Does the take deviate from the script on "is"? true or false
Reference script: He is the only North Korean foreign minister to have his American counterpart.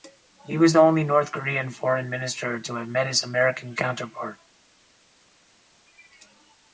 true